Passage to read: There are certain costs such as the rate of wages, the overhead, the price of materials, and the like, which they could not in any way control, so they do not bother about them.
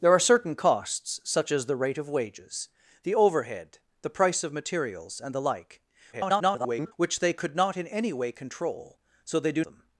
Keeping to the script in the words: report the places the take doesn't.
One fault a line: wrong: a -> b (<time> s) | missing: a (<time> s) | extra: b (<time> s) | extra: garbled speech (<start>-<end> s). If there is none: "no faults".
extra: garbled speech (6.1-6.9 s)
missing: not bother about (9.7 s)